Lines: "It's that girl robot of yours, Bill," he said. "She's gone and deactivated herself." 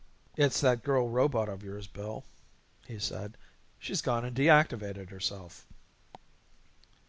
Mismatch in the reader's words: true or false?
false